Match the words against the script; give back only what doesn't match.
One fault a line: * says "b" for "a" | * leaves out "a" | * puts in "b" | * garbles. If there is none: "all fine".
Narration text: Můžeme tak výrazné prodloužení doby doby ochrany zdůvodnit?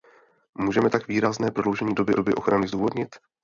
all fine